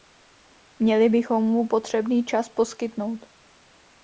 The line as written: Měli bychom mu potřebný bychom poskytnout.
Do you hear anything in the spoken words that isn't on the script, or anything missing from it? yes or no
yes